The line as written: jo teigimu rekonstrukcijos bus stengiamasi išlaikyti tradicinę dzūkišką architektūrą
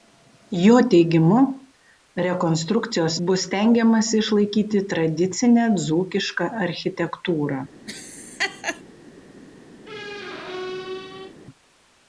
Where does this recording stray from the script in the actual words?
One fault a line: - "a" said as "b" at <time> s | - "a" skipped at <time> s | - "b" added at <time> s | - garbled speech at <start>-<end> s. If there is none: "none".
none